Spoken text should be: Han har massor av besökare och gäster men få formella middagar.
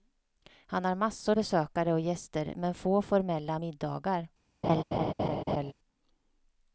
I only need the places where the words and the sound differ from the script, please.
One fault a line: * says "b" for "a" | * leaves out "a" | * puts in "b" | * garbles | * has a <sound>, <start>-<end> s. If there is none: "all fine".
* leaves out "av"
* has a laugh, 4.6-5.7 s